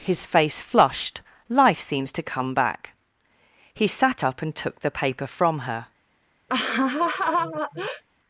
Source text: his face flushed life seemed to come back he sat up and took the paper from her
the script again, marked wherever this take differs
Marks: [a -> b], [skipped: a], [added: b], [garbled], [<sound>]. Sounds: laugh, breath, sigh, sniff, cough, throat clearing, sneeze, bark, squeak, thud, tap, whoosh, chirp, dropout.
his face flushed life [seemed -> seems] to come back he sat up and took the paper from her [laugh]